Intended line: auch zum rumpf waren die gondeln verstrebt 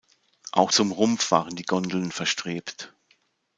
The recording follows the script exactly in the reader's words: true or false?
true